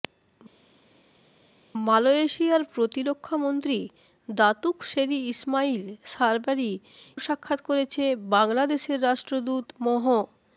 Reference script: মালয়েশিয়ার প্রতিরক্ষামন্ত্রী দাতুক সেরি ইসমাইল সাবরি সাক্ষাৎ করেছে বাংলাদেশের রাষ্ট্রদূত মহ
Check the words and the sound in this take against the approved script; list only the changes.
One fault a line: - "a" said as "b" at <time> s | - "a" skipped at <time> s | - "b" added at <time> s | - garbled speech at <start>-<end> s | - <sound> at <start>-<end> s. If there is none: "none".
none